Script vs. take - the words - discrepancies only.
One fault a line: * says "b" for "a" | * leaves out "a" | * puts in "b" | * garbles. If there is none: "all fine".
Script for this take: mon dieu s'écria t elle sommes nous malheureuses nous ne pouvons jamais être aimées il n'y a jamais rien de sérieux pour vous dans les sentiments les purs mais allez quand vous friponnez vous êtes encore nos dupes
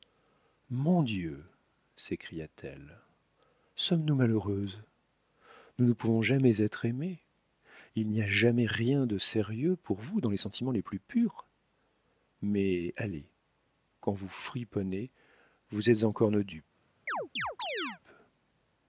* puts in "plus"